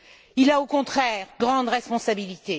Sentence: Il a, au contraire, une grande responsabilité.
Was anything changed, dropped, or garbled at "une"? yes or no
yes